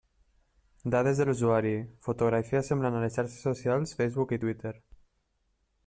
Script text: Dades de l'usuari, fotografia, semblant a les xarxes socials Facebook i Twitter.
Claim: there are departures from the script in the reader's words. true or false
false